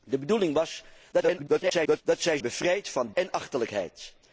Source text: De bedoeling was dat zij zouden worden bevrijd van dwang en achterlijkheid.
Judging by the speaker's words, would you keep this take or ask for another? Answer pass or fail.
fail